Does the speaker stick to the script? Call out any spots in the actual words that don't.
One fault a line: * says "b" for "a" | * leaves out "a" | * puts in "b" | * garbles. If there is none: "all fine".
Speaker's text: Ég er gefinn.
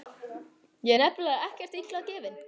* puts in "nefnilega ekkert illa"